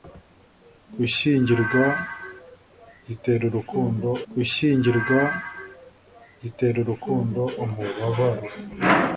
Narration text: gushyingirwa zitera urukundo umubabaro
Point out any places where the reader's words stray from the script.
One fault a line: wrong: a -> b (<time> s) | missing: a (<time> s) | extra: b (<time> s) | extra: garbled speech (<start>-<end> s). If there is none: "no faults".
extra: gushyingirwa zitera urukundo (4.3 s)